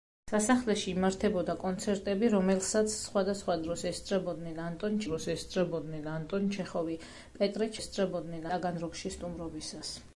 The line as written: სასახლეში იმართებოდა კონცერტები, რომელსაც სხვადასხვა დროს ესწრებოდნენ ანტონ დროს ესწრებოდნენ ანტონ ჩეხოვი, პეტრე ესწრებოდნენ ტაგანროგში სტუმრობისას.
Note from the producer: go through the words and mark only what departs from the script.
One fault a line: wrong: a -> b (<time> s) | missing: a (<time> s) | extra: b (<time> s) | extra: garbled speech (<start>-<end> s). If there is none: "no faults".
no faults